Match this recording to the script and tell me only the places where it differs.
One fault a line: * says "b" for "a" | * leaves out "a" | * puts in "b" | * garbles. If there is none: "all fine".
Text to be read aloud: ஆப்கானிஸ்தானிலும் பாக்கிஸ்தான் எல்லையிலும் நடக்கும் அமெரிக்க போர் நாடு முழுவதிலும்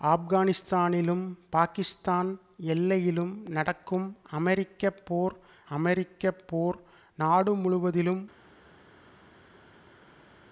* puts in "அமெரிக்க போர்"